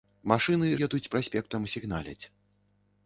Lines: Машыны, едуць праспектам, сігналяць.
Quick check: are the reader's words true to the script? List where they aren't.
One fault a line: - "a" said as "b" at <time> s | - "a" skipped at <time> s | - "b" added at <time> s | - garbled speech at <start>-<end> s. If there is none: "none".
none